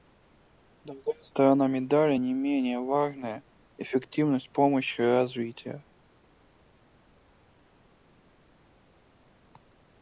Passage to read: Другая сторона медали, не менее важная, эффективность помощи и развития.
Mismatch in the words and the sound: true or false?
false